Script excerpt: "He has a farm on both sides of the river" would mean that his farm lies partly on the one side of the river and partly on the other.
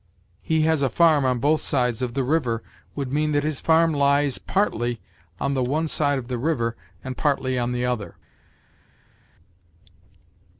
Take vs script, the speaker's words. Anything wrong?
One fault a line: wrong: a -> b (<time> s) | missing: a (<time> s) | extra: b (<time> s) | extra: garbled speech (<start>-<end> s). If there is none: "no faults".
no faults